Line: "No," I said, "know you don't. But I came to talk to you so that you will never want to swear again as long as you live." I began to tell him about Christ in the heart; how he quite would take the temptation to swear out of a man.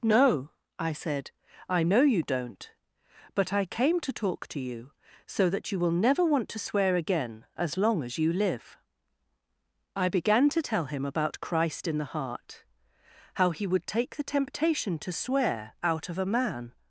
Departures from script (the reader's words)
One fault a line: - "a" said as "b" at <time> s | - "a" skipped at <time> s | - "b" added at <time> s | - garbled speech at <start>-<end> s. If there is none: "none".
- "I" added at 1.7 s
- "quite" skipped at 13.7 s